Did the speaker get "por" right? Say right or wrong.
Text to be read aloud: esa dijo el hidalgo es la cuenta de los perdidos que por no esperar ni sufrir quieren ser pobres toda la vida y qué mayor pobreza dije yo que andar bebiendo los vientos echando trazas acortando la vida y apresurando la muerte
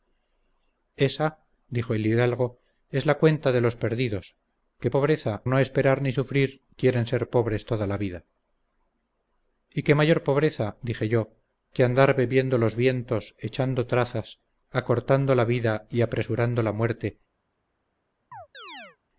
wrong